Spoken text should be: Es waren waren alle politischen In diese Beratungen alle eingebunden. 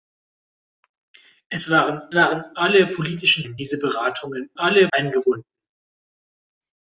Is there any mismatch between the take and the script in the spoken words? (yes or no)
no